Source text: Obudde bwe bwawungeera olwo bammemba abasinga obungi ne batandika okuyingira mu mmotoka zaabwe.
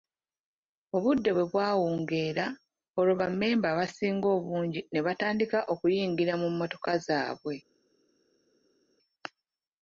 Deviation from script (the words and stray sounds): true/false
false